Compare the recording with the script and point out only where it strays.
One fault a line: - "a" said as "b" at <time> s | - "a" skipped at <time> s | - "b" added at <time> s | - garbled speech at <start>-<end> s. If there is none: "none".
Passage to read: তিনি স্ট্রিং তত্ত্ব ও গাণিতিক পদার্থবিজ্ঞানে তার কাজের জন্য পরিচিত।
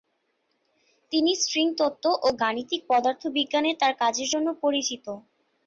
none